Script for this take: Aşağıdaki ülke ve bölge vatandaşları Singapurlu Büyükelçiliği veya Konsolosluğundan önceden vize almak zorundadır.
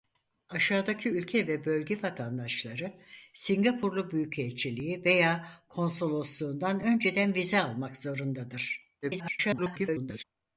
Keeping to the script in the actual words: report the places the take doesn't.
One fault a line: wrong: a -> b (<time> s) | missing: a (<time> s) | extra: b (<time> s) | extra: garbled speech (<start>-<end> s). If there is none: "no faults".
extra: garbled speech (9.0-10.2 s)